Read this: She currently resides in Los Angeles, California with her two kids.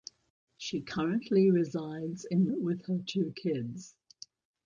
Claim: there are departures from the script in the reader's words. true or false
true